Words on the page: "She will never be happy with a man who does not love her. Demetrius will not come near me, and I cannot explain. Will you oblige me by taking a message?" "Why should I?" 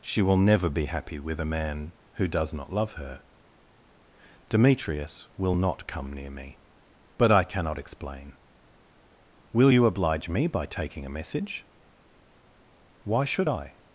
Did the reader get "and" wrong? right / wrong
wrong